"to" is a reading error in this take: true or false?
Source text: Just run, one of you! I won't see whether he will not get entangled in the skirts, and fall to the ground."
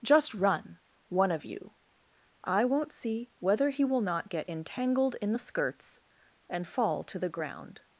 false